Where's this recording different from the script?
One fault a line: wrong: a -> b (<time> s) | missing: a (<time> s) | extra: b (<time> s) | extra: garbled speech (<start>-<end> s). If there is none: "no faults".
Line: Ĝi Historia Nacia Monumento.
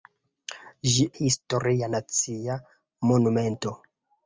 no faults